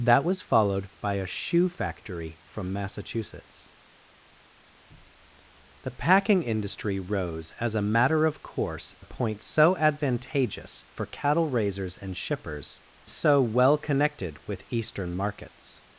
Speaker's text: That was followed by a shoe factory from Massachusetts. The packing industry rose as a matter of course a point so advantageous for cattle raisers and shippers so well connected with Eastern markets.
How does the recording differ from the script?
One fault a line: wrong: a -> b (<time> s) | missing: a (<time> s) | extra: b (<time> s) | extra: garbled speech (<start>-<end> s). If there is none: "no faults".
no faults